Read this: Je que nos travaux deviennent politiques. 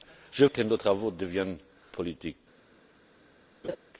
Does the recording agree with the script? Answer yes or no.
yes